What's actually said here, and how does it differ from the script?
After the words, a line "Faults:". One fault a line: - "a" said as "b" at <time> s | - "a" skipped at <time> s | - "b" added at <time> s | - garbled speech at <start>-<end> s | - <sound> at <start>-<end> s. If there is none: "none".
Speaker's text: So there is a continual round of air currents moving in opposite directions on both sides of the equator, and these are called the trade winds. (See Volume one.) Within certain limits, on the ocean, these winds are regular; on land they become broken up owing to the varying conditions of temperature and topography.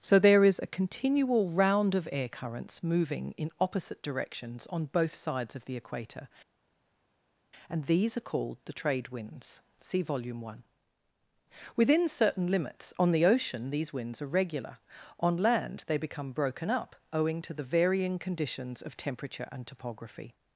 So there is a continual round of air currents moving in opposite directions on both sides of the equator, and these are called the trade winds. (See Volume one.) Within certain limits, on the ocean, these winds are regular; on land they become broken up owing to the varying conditions of temperature and topography.
Faults:
none